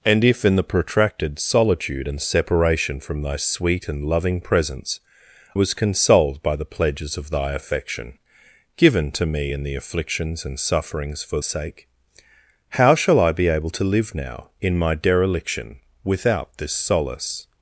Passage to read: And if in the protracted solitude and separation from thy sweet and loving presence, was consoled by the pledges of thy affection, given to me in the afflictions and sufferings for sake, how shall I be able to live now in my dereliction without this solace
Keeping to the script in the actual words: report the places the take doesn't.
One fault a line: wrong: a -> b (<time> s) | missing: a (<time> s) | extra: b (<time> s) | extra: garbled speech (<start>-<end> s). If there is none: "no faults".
no faults